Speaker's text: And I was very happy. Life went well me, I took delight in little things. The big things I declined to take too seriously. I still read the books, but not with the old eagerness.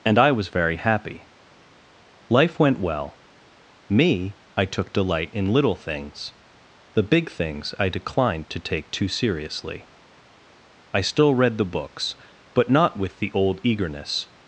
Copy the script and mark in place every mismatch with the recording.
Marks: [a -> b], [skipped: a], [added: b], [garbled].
And I was very happy. Life went well me, I took delight in little things. The big things I declined to take too seriously. I still read the books, but not with the old eagerness.